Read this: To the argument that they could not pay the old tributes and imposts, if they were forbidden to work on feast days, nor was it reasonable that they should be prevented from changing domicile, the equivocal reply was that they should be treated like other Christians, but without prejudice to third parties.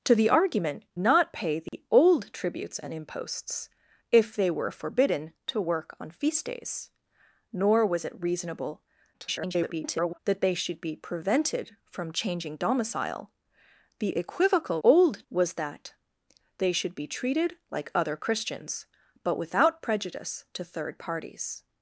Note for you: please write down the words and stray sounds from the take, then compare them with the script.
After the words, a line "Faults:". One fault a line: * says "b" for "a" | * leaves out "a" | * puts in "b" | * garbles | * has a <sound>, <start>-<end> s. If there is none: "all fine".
To the argument not pay the old tributes and imposts, if they were forbidden to work on feast days, nor was it reasonable [garbled] that they should be prevented from changing domicile, the equivocal old was that they should be treated like other Christians, but without prejudice to third parties.
Faults:
* leaves out "that they could"
* has a dropout, 1.7-1.7 s
* garbles
* says "old" for "reply"